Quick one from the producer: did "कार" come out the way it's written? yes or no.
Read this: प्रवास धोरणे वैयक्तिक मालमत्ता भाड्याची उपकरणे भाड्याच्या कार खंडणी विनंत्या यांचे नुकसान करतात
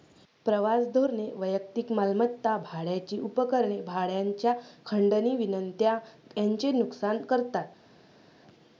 no